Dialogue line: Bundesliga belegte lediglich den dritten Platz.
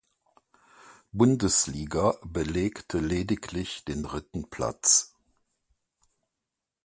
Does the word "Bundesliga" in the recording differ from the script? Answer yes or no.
no